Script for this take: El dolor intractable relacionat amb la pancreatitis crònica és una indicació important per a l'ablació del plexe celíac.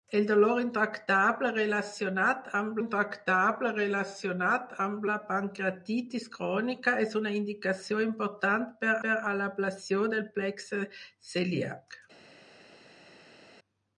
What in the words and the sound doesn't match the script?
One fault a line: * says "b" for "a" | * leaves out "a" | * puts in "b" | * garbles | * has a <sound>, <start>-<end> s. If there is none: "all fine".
* puts in "intractable relacionat amb"
* puts in "per"